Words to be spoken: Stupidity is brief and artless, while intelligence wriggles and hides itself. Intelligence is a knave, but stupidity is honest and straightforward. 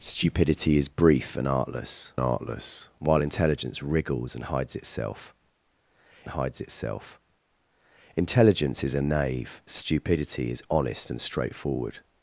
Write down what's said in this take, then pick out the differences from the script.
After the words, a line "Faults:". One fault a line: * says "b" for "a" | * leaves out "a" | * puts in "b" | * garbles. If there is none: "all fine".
Stupidity is brief and artless artless, while intelligence wriggles and hides itself hides itself. Intelligence is a knave, stupidity is honest and straightforward.
Faults:
* puts in "artless"
* puts in "hides itself"
* leaves out "but"